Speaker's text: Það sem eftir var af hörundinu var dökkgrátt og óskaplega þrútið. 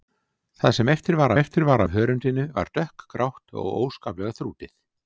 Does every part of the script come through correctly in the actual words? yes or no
no